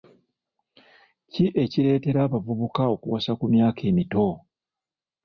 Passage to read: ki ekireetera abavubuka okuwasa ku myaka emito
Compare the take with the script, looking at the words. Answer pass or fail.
pass